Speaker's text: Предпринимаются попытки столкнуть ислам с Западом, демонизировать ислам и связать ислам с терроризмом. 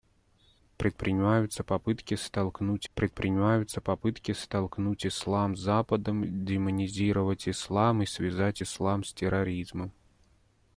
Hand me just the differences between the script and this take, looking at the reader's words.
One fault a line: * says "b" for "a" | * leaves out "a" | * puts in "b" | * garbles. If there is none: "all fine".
* puts in "предпринимаются попытки столкнуть"